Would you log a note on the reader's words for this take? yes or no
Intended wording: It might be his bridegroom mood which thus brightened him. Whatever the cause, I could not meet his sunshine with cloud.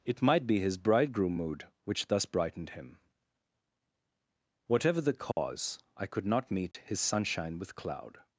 no